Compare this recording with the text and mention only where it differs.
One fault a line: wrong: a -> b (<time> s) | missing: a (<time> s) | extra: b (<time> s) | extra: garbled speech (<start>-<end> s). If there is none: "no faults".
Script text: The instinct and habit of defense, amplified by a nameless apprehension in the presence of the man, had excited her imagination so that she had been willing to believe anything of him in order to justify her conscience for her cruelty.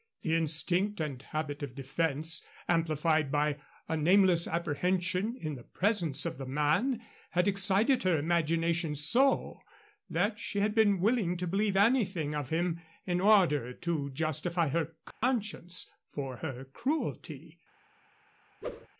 no faults